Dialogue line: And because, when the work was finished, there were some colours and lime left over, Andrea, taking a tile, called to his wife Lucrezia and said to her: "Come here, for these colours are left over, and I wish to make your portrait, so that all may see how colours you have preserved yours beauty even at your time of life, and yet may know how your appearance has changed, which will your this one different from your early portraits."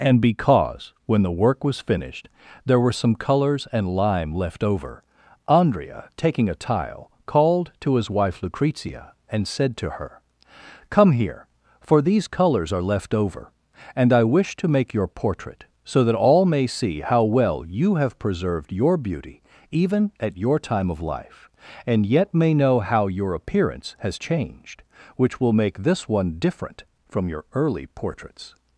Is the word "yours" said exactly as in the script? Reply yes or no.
no